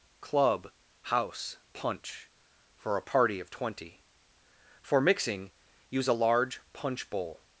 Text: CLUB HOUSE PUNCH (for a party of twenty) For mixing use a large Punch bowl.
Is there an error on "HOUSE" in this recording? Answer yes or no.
no